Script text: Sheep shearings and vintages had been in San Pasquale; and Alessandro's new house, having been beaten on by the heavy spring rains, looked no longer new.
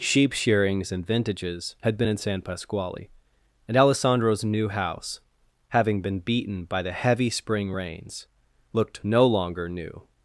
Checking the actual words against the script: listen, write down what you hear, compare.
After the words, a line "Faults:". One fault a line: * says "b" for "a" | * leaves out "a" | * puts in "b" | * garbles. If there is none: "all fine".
Sheep shearings and vintages had been in San Pasquale; and Alessandro's new house, having been beaten by the heavy spring rains, looked no longer new.
Faults:
* leaves out "on"